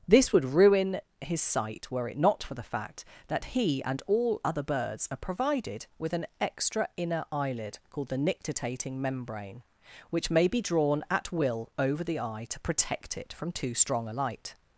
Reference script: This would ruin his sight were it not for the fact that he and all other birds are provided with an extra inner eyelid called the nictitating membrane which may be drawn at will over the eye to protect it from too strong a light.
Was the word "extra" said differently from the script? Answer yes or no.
no